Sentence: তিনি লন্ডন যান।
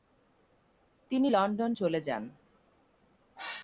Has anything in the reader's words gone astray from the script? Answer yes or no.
yes